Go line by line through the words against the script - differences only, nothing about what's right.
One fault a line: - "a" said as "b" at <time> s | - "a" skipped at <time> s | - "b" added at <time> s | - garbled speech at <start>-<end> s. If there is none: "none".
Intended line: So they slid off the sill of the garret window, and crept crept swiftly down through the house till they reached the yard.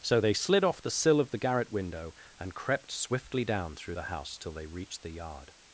- "crept" skipped at 2.9 s